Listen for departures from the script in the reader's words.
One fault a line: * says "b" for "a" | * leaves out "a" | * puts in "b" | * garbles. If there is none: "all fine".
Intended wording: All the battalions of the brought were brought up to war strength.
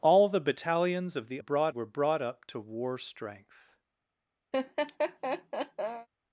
all fine